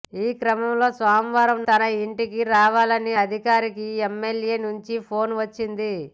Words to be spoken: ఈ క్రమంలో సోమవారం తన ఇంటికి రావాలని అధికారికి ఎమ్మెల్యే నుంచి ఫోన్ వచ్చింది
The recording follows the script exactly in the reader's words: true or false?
true